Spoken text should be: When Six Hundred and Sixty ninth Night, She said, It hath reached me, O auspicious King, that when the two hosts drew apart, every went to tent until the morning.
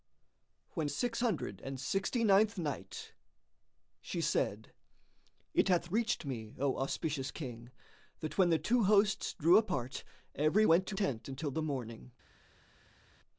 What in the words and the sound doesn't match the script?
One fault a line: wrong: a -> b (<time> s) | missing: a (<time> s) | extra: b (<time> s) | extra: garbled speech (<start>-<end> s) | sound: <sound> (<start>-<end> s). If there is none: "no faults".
no faults